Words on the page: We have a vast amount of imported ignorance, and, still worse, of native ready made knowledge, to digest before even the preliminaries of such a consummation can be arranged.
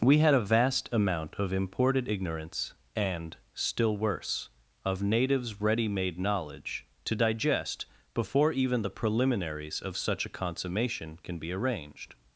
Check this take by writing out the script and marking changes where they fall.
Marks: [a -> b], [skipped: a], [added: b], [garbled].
We [have -> had] a vast amount of imported ignorance, and, still worse, of [native -> natives] ready made knowledge, to digest before even the preliminaries of such a consummation can be arranged.